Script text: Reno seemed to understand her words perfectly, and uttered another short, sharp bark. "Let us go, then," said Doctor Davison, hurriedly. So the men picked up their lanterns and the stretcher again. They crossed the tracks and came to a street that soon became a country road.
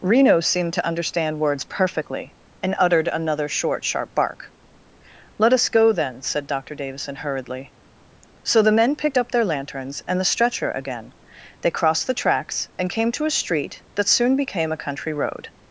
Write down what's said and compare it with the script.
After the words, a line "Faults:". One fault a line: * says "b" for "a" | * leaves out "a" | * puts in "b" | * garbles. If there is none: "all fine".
Reno seemed to understand words perfectly, and uttered another short, sharp bark. "Let us go, then," said Doctor Davison, hurriedly. So the men picked up their lanterns and the stretcher again. They crossed the tracks and came to a street that soon became a country road.
Faults:
* leaves out "her"